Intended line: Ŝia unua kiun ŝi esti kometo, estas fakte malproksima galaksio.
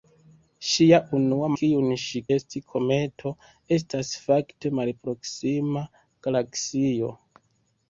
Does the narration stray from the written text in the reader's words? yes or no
no